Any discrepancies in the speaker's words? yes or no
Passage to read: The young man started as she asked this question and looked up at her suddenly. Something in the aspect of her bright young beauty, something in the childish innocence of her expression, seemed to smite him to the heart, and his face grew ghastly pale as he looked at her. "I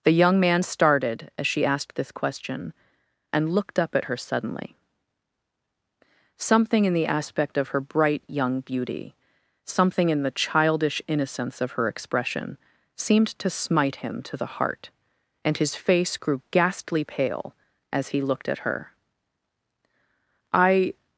no